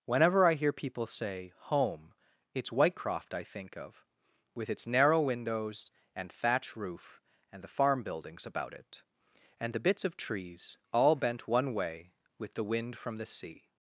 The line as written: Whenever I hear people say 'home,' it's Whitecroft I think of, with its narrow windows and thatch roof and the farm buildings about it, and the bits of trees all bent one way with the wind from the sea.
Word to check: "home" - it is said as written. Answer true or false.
true